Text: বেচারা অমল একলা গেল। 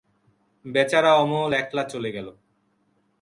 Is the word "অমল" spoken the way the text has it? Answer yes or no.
yes